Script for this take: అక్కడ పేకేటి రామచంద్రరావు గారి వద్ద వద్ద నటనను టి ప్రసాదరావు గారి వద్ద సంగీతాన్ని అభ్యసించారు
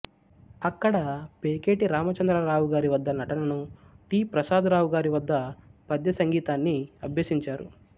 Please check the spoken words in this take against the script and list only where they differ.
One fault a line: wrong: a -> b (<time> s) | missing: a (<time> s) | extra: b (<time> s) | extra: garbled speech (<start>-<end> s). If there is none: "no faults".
missing: వద్ద (3.1 s)
extra: పద్య (5.9 s)